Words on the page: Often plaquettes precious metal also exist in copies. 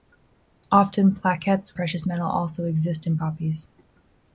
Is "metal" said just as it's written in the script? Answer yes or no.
yes